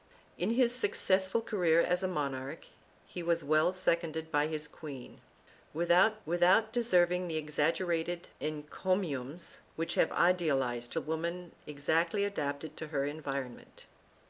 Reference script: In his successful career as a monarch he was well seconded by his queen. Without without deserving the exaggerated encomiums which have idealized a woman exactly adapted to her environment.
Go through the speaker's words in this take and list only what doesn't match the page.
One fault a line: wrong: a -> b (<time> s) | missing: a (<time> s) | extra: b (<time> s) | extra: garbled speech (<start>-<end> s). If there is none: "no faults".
no faults